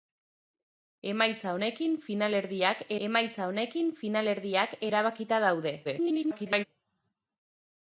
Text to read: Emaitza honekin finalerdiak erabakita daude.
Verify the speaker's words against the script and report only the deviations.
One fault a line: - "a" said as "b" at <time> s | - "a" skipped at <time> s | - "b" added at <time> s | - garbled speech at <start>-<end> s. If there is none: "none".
- "emaitza honekin finalerdiak" added at 3.1 s
- garbled speech at 5.8-6.7 s